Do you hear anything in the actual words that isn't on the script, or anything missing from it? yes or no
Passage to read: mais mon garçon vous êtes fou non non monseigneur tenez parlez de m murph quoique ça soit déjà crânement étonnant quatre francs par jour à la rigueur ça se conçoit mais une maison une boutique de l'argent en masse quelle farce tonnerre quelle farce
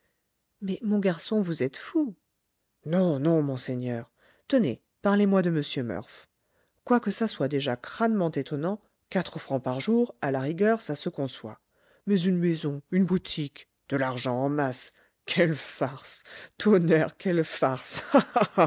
yes